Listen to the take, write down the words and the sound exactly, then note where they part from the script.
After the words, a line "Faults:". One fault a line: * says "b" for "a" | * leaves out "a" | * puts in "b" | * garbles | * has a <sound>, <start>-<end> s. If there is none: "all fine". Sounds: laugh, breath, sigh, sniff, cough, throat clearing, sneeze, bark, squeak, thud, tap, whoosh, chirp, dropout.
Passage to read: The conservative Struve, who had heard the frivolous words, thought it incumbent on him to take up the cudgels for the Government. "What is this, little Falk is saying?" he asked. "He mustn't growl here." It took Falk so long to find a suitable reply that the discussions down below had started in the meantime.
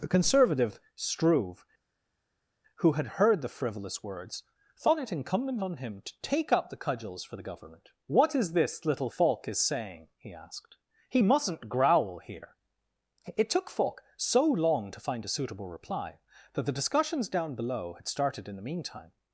The conservative Struve, who had heard the frivolous words, thought it incumbent on him to take up the cudgels for the Government. "What is this, little Falk is saying?" he asked. "He mustn't growl here." It took Falk so long to find a suitable reply that the discussions down below had started in the meantime.
Faults:
all fine